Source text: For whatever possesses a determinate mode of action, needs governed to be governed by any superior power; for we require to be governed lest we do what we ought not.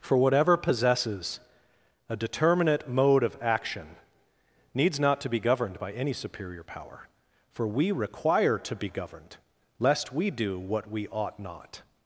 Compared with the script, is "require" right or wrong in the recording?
right